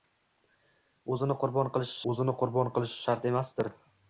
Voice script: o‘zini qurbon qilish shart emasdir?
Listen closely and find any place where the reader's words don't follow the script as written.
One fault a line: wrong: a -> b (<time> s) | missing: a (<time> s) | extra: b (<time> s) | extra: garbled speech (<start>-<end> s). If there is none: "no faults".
extra: o‘zini qurbon qilish (2.1 s)